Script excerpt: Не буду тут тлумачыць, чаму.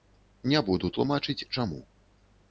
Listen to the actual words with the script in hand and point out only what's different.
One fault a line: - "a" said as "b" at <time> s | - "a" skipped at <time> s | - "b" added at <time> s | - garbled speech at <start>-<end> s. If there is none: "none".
- "тут" skipped at 0.9 s